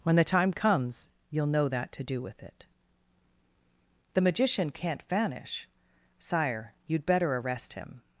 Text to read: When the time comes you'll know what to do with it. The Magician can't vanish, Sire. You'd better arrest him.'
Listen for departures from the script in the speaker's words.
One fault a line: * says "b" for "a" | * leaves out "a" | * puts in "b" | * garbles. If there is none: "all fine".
* says "that" for "what"